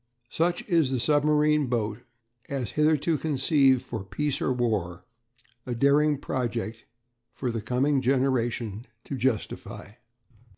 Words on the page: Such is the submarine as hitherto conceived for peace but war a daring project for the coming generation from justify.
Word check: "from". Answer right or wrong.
wrong